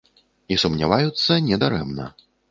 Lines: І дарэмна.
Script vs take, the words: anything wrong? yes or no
yes